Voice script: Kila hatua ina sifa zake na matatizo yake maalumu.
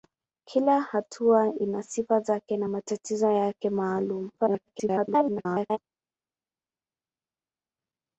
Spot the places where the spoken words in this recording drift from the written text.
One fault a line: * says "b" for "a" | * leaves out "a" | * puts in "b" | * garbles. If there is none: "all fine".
* garbles